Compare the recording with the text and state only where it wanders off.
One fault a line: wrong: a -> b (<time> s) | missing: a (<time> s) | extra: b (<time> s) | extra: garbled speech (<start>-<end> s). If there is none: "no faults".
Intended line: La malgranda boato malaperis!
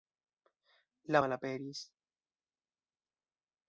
missing: malgranda boato (1.2 s)